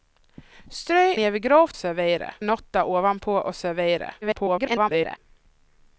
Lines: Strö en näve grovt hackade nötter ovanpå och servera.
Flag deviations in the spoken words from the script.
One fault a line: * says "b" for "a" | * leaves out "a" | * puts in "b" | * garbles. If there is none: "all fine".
* leaves out "en"
* says "servera" for "hackade"
* garbles